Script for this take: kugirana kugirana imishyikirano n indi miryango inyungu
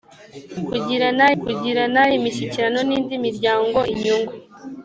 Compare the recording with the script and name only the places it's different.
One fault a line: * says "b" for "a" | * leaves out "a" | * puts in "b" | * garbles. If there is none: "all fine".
all fine